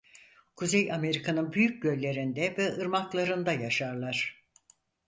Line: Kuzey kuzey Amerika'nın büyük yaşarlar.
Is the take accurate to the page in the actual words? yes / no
no